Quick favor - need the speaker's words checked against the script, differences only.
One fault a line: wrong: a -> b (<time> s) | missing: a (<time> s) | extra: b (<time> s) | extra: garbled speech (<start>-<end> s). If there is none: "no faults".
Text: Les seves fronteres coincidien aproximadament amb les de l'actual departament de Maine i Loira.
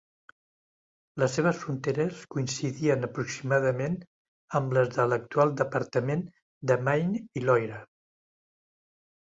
no faults